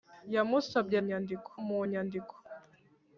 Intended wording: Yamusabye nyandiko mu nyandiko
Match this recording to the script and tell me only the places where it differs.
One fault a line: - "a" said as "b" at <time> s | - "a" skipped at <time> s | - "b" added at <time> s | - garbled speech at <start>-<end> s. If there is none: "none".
none